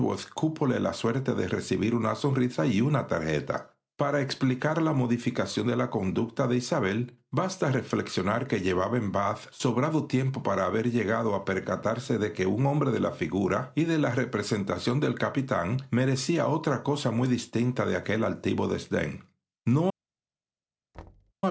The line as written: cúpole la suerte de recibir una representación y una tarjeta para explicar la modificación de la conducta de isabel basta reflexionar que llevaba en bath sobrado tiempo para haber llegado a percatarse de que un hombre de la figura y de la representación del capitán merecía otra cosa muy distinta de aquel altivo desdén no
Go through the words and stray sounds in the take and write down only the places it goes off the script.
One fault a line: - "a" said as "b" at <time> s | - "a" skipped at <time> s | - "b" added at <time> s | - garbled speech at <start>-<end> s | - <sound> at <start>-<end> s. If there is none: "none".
- "representación" said as "sonrisa" at 2.1 s
- thud at 20.9-21.3 s